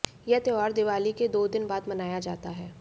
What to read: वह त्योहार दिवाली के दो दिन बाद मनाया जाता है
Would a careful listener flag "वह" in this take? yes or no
yes